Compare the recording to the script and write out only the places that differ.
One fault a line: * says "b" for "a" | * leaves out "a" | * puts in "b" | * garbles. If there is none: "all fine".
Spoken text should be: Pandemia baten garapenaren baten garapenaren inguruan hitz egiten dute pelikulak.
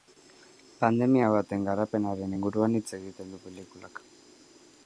* leaves out "baten garapenaren"
* says "du" for "dute"